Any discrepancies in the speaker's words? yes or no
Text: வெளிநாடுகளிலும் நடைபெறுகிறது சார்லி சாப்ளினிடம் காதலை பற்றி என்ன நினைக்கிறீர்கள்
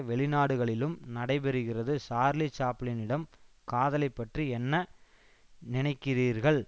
no